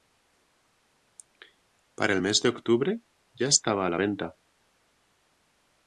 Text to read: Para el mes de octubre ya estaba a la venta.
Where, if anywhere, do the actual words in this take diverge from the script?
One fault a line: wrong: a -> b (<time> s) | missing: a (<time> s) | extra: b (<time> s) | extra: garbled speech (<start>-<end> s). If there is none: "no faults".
no faults